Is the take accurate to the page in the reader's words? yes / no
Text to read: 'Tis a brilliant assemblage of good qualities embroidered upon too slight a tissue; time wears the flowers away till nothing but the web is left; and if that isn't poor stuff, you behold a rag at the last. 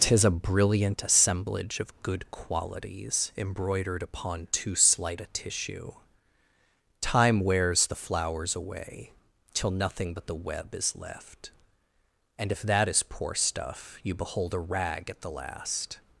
no